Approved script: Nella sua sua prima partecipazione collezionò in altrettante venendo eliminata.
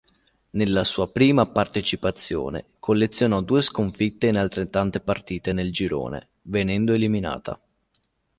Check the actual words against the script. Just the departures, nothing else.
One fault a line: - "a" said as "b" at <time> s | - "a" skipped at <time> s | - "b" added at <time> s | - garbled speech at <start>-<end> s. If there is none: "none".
- "sua" skipped at 1.1 s
- "due sconfitte" added at 3.4 s
- "partite nel girone" added at 5.0 s